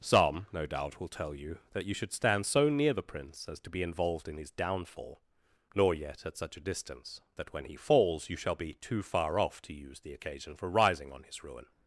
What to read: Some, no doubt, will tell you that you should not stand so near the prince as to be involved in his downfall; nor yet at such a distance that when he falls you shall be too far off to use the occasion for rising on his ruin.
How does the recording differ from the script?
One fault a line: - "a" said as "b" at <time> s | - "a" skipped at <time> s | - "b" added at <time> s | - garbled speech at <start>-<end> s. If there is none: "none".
- "not" skipped at 2.1 s